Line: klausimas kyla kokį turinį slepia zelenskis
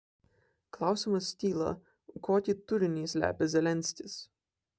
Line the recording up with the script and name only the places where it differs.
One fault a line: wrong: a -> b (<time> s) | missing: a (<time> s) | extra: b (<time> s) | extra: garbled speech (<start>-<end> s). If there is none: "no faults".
no faults